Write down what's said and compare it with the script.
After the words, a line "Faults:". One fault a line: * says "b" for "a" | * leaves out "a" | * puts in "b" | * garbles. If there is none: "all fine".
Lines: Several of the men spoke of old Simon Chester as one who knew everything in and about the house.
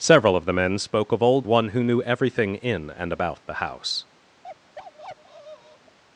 Several of the men spoke of old One who knew everything in and about the house.
Faults:
* leaves out "Simon Chester as"